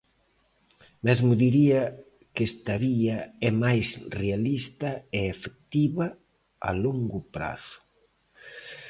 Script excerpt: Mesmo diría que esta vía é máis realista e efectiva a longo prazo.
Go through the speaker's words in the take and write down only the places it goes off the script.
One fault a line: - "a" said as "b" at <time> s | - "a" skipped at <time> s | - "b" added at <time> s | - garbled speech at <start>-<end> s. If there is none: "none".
none